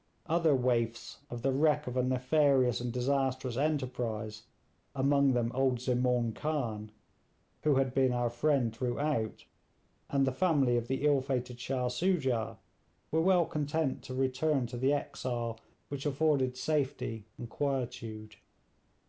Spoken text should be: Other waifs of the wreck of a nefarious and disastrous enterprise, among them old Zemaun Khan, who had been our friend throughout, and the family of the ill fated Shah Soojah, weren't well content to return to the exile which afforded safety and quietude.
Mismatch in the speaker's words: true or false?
true